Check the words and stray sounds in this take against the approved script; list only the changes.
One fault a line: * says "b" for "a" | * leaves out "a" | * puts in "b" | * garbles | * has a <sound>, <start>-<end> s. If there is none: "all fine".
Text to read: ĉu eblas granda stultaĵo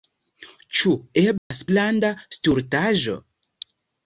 * has a dropout, 1.4-1.5 s